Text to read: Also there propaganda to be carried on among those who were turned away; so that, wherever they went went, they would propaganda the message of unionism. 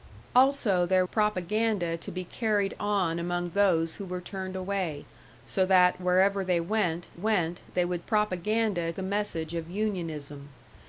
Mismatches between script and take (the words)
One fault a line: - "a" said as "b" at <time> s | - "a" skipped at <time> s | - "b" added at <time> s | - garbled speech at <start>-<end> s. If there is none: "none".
none